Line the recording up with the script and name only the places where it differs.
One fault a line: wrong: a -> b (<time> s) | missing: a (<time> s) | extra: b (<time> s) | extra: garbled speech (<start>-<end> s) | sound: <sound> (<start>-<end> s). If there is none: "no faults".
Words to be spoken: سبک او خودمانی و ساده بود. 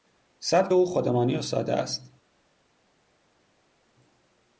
wrong: بود -> است (1.7 s)